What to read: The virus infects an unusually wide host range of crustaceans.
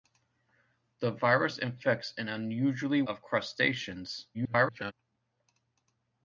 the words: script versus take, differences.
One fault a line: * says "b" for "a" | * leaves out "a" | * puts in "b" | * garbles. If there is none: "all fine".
* leaves out "wide host range"
* garbles